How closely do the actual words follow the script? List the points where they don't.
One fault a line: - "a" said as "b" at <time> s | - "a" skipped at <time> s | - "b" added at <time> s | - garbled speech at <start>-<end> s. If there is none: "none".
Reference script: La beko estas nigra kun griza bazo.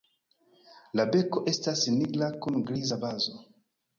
none